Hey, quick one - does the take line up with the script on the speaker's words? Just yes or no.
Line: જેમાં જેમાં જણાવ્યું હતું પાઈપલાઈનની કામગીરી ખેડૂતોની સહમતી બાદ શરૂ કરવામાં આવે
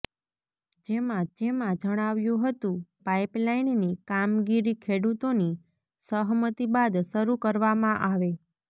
yes